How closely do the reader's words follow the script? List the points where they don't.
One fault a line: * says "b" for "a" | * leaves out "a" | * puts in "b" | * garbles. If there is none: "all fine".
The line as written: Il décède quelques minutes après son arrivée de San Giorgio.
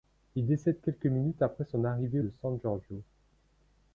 all fine